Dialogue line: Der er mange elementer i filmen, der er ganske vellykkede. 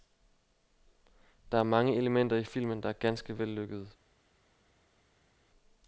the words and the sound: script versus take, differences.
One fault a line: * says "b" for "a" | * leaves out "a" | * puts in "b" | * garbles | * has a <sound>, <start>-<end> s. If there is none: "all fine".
all fine